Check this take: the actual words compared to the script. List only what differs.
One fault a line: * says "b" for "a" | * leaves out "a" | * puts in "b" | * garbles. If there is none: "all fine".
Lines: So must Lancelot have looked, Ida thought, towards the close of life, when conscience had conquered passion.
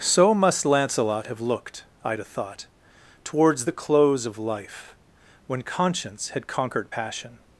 all fine